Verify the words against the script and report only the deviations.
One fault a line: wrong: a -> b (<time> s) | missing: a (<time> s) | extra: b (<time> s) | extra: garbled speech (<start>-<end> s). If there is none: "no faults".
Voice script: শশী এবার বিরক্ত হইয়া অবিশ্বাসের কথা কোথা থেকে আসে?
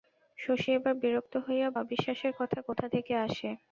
no faults